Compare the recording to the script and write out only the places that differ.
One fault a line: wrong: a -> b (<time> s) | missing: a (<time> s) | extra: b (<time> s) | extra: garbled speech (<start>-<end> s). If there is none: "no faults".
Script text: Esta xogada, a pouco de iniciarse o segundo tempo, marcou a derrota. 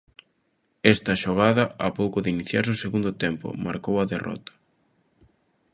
no faults